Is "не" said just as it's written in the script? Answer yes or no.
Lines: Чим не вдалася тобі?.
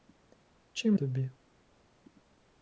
no